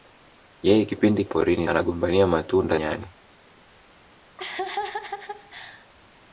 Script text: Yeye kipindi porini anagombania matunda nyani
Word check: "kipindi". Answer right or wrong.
right